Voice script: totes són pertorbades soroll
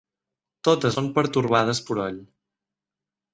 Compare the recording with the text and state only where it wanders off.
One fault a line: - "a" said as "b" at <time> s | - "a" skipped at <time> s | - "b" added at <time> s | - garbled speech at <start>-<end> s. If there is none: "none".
none